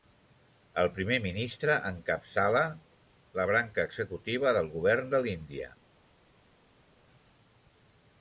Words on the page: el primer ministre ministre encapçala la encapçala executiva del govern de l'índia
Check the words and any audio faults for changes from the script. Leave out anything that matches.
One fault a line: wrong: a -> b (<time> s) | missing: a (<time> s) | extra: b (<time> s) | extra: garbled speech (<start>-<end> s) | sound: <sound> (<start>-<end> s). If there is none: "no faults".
missing: ministre (1.8 s)
wrong: encapçala -> branca (3.5 s)